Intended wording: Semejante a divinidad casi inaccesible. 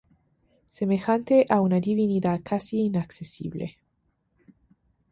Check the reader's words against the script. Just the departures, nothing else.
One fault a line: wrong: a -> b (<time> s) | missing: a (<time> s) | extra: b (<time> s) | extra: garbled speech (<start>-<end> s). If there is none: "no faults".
extra: una (1.6 s)